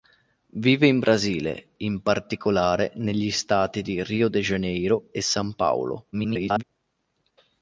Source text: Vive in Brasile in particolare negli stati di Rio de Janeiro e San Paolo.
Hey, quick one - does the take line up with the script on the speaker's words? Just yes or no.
no